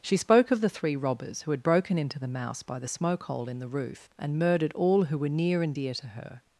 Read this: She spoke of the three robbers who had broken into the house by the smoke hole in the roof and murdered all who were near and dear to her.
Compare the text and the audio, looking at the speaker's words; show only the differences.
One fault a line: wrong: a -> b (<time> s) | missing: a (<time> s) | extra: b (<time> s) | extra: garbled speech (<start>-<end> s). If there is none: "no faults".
wrong: house -> mouse (2.3 s)